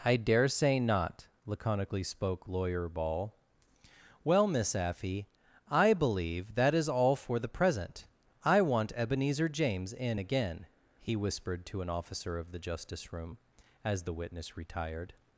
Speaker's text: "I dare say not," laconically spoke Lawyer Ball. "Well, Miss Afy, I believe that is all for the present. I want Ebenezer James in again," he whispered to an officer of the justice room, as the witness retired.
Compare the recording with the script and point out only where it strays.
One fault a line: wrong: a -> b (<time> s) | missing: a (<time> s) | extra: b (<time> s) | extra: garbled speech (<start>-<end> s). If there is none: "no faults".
no faults